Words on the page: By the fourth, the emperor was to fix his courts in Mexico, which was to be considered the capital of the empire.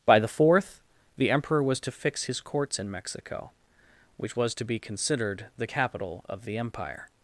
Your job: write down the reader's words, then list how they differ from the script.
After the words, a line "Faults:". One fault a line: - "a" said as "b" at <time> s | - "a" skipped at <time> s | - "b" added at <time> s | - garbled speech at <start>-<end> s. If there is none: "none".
By the fourth, the emperor was to fix his courts in Mexico, which was to be considered the capital of the empire.
Faults:
none